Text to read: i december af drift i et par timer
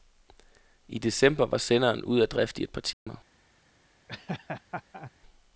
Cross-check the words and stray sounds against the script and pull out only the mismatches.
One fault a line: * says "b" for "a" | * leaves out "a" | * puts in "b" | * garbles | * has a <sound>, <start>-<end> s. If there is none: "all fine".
* puts in "var senderen ude"
* has a dropout, 2.9-3.1 s
* has a laugh, 4.1-5.1 s